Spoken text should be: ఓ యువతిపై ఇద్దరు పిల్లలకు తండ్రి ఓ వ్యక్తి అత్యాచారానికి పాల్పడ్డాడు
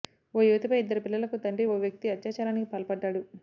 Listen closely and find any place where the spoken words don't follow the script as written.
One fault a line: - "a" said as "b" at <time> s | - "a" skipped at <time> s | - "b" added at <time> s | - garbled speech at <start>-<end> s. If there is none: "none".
none